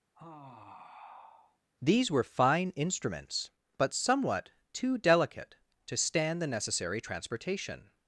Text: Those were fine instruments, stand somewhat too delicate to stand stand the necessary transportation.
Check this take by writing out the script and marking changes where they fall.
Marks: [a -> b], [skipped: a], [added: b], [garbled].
[Those -> These] were fine instruments, [stand -> but] somewhat too delicate to stand [skipped: stand] the necessary transportation.